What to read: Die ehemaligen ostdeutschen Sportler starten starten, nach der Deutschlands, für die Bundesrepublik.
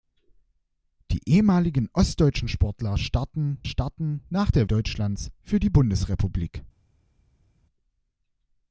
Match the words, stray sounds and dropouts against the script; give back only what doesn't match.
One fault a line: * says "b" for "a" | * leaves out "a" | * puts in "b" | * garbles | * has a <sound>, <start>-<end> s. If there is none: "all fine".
all fine